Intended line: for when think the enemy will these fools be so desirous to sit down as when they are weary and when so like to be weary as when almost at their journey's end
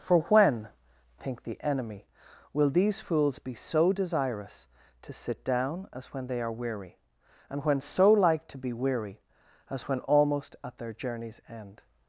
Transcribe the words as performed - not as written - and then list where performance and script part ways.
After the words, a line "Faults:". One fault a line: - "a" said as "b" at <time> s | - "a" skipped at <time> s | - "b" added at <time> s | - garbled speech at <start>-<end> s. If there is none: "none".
for when think the enemy will these fools be so desirous to sit down as when they are weary and when so like to be weary as when almost at their journey's end
Faults:
none